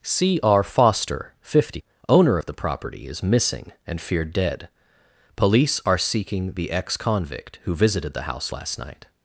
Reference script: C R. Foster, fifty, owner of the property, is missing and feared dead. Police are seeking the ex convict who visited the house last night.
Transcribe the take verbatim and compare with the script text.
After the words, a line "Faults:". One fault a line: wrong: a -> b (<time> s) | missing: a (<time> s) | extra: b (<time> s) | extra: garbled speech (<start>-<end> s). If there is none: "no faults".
C R. Foster, fifty, owner of the property, is missing and feared dead. Police are seeking the ex convict who visited the house last night.
Faults:
no faults